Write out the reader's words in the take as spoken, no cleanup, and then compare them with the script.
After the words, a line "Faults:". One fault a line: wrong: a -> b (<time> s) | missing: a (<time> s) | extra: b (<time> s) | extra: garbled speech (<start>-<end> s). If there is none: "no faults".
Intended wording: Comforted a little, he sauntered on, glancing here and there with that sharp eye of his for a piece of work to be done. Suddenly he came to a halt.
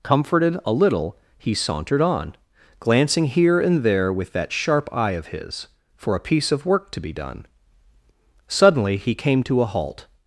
Comforted a little, he sauntered on, glancing here and there with that sharp eye of his for a piece of work to be done. Suddenly he came to a halt.
Faults:
no faults